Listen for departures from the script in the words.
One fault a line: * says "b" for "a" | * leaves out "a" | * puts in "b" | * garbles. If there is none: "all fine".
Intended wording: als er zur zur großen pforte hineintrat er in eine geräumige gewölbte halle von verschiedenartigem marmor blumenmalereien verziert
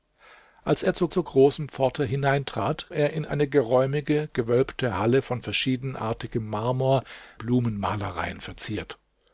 all fine